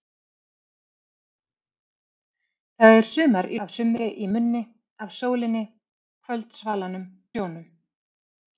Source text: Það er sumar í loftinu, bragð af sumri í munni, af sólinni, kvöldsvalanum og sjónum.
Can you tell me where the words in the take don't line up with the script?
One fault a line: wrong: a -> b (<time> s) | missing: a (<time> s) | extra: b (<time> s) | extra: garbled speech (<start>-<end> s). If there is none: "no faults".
missing: loftinu bragð (3.6 s)
missing: og (7.1 s)